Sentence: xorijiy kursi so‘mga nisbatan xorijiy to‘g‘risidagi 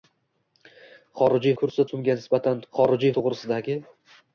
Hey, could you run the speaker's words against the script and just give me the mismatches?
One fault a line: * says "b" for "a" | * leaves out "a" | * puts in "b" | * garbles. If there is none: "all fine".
all fine